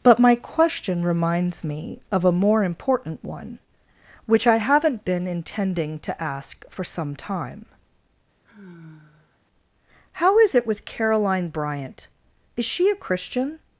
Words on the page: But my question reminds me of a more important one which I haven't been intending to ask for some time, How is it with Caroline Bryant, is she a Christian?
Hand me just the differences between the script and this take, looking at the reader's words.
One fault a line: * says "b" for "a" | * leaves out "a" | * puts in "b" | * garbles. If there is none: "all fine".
all fine